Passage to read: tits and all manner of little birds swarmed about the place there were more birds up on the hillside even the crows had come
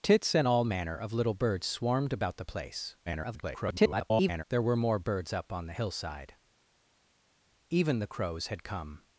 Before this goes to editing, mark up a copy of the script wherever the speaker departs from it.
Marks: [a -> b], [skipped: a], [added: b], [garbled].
tits and all manner of little birds swarmed about the place [garbled] there were more birds up on the hillside even the crows had come